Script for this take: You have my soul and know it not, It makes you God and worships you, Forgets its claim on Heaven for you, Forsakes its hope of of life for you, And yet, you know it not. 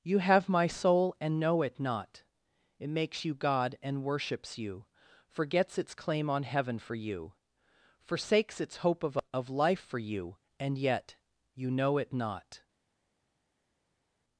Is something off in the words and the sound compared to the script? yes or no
no